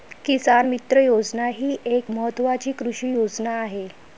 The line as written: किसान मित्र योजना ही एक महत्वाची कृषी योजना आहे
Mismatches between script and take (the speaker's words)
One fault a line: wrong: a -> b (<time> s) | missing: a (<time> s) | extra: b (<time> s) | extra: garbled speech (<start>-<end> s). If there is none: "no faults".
no faults